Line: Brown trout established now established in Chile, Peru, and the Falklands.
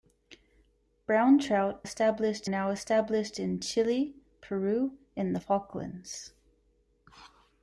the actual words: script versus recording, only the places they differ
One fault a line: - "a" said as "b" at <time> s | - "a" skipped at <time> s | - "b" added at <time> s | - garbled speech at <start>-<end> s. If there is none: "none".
none